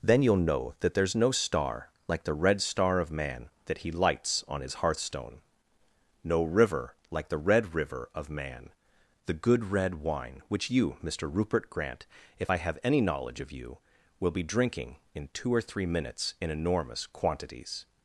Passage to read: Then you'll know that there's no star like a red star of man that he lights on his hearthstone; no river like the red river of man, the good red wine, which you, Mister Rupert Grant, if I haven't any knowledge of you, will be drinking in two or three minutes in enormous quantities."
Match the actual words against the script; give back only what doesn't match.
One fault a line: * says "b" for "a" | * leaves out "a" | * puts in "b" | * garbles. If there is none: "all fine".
* says "the" for "a"
* says "have" for "haven't"